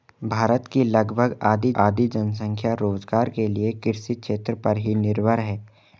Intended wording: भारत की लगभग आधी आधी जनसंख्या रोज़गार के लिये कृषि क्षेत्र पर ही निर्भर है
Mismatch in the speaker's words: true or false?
false